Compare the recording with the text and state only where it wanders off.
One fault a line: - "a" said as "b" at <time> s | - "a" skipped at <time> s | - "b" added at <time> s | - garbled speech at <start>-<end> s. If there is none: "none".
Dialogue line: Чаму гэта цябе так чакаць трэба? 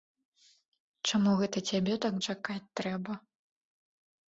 none